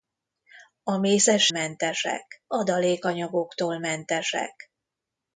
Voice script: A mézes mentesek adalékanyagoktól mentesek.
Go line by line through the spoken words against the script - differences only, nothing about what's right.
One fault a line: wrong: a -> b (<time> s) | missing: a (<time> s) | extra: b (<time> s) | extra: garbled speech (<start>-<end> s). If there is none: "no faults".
no faults